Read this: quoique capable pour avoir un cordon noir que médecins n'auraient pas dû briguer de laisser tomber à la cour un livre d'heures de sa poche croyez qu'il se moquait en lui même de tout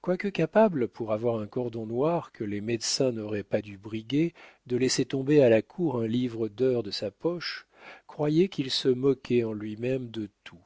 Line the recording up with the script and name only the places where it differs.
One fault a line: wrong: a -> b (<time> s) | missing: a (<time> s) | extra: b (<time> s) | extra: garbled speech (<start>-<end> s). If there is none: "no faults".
extra: les (2.4 s)